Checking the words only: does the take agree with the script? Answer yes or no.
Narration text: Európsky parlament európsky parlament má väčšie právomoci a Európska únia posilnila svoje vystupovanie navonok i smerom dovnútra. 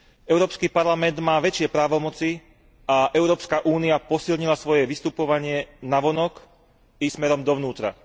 no